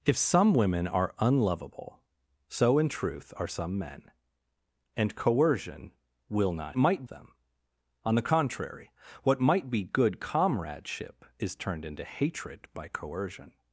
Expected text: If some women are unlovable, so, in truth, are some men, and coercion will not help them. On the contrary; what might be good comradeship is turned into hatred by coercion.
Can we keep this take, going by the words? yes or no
no